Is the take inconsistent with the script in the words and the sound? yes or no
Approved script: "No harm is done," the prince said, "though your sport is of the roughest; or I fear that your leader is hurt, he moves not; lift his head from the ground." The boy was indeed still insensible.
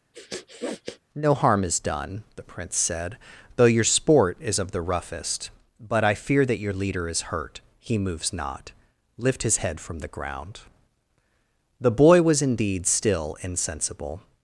yes